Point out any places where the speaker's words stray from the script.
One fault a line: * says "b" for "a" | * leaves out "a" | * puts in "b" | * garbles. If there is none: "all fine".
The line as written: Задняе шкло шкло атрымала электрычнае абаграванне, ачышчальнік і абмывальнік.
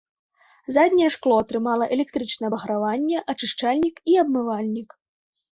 * leaves out "шкло"